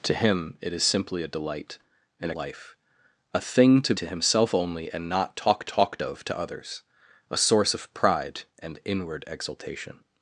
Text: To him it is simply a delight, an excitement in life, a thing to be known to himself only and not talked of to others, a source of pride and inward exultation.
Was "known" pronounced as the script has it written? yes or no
no